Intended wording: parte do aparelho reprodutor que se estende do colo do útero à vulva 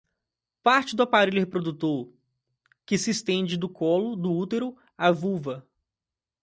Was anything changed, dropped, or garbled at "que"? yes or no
no